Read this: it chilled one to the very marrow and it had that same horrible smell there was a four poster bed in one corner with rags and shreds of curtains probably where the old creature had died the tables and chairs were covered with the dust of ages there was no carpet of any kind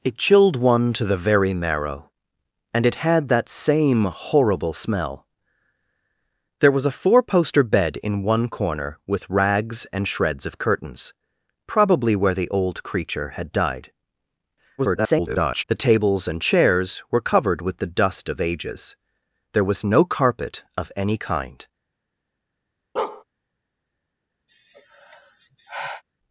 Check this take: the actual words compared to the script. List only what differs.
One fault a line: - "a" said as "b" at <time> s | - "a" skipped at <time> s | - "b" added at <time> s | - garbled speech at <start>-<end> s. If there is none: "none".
- garbled speech at 14.8-15.6 s